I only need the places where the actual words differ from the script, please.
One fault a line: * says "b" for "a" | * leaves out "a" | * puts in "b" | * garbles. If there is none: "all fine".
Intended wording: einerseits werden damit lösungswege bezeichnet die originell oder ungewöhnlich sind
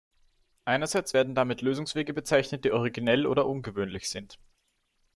all fine